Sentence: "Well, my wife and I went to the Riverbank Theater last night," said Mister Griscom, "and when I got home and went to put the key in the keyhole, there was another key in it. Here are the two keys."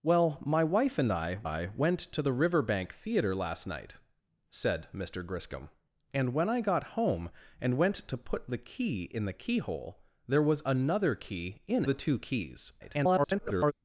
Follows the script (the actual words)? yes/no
no